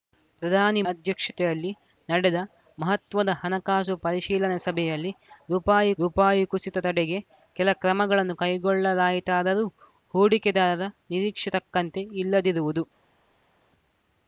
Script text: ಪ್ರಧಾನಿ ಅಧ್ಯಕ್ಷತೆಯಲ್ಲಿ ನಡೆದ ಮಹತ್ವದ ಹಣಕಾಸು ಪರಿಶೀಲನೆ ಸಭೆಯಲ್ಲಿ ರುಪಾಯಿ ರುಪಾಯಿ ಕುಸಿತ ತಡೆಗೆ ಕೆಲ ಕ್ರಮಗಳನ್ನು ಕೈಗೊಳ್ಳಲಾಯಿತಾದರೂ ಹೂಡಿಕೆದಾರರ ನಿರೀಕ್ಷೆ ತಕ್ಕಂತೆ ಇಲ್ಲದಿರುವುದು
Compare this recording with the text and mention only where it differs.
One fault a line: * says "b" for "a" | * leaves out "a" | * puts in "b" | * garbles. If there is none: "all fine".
all fine